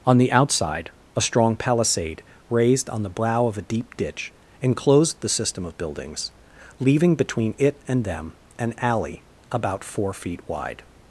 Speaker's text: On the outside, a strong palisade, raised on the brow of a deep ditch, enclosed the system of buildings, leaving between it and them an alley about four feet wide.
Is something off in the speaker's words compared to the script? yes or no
no